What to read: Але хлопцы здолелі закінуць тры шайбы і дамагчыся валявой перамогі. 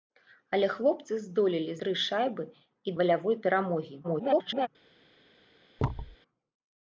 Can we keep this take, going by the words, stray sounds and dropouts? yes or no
no